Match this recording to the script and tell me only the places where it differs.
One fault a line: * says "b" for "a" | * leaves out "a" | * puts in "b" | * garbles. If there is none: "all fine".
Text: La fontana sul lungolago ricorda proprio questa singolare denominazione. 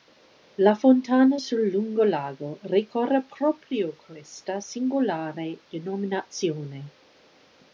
all fine